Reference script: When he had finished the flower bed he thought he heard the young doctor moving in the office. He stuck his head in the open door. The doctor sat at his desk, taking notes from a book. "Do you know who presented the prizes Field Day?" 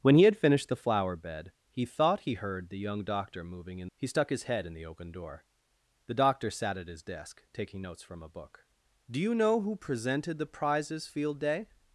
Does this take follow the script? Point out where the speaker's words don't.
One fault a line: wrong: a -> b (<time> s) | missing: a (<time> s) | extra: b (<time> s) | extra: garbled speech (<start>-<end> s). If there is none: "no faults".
missing: the office (3.9 s)